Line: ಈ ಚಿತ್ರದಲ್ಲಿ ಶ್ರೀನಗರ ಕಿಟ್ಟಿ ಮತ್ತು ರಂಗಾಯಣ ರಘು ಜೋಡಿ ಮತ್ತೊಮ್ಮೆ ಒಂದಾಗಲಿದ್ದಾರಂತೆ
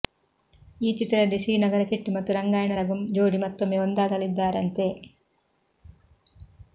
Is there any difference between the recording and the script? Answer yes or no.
no